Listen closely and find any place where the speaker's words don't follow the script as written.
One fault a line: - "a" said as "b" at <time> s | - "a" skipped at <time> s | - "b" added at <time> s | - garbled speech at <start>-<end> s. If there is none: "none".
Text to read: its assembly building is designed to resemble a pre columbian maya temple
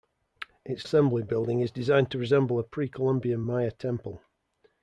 none